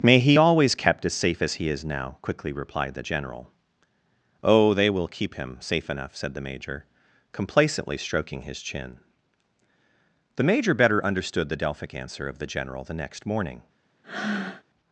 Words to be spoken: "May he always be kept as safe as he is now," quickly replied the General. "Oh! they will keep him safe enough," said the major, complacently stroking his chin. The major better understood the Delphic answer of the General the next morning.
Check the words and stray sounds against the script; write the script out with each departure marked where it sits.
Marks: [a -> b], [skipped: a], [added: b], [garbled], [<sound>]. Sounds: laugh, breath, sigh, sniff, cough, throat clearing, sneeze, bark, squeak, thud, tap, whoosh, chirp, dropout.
"May he always [skipped: be] kept as safe as he is now," quickly replied the General. "Oh! they will keep him safe enough," said the major, complacently stroking his chin. The major better understood the Delphic answer of the General the next morning. [breath]